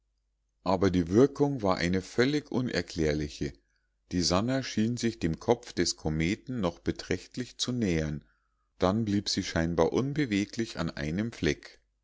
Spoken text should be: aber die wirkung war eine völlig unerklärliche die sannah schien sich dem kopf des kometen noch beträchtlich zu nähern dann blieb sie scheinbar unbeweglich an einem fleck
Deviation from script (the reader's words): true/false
false